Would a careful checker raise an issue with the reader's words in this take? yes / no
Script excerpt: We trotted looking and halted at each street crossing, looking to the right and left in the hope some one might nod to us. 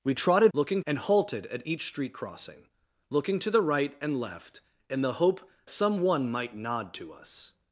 no